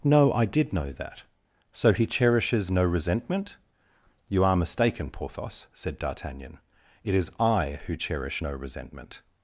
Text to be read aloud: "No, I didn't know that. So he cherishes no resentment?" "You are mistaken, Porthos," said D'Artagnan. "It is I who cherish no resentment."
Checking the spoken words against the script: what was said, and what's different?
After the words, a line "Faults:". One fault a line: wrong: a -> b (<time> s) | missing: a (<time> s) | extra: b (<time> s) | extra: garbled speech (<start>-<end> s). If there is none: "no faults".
"No, I did know that. So he cherishes no resentment?" "You are mistaken, Porthos," said D'Artagnan. "It is I who cherish no resentment."
Faults:
wrong: didn't -> did (0.5 s)